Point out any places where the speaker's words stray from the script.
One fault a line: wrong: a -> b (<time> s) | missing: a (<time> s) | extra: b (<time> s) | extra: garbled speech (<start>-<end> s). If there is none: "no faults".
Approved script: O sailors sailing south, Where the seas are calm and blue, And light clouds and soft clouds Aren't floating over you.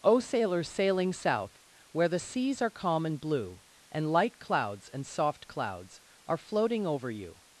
wrong: Aren't -> Are (6.2 s)